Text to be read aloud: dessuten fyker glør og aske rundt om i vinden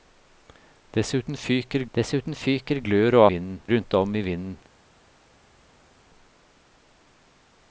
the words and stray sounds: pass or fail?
fail